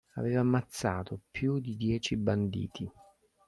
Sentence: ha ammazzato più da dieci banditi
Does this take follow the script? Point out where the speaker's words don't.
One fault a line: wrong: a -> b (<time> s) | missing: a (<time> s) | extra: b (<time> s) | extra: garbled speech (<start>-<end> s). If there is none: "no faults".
wrong: ha -> aveva (0.1 s)
wrong: da -> di (1.6 s)